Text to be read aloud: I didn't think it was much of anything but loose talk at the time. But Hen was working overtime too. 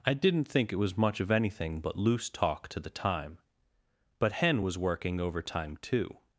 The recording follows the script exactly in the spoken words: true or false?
false